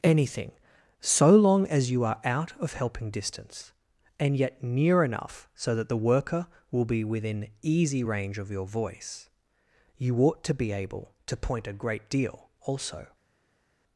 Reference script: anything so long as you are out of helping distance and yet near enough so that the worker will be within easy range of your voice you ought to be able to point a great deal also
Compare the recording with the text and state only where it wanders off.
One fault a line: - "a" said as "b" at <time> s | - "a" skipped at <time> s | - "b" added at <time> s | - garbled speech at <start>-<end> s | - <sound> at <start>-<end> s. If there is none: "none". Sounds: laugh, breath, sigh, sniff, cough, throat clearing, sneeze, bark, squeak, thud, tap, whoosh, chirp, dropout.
none